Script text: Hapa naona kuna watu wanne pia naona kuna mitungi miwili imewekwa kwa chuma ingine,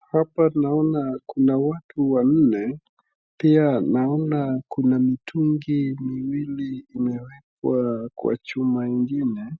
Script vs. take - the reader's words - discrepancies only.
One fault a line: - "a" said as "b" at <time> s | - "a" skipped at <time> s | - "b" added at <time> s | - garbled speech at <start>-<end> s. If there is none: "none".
none